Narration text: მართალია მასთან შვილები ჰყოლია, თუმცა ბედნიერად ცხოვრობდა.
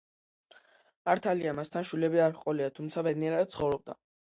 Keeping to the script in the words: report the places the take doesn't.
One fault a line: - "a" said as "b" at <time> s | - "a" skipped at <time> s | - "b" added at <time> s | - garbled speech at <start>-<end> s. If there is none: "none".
- "არ" added at 2.3 s